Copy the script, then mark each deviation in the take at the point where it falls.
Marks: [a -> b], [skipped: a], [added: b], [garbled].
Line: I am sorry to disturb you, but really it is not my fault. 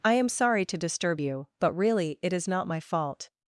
I am sorry to disturb you, but really it is not my fault.